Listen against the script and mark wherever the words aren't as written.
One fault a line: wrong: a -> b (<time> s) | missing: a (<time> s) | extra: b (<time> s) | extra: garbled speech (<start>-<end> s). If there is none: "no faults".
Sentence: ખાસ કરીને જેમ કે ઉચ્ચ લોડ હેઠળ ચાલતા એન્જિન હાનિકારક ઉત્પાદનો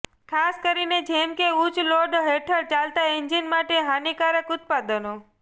extra: માટે (3.5 s)